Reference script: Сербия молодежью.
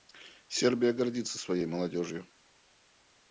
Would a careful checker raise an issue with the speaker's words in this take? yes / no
yes